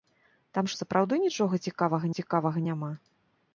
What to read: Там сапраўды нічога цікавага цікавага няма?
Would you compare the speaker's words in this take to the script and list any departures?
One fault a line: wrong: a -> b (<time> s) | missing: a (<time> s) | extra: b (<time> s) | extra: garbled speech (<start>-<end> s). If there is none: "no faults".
no faults